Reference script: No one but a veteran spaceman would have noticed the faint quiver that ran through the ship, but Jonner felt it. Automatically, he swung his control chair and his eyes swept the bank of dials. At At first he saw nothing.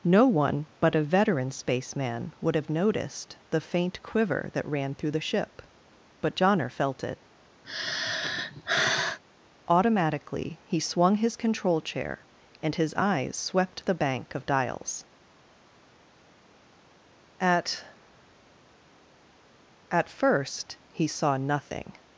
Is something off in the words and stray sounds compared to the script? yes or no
yes